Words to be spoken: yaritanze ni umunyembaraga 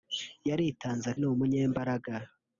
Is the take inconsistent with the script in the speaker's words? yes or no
no